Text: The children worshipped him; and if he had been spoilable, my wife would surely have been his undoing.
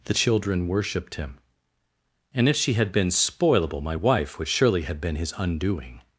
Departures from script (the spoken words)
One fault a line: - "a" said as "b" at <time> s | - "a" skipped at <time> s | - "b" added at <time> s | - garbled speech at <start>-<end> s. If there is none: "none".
- "he" said as "she" at 2.5 s